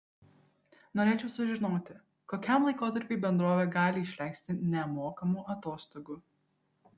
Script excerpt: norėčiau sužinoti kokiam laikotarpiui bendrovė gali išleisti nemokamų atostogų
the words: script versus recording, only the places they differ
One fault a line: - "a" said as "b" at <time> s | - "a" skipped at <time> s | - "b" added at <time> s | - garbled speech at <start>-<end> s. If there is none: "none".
none